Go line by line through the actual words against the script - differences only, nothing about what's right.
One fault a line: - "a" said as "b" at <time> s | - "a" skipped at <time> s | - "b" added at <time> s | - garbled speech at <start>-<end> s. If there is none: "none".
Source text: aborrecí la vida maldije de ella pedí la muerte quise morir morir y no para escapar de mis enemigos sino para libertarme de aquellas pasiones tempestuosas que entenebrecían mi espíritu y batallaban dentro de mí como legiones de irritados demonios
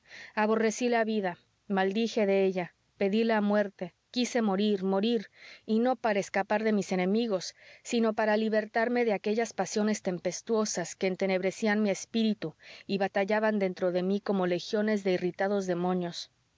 none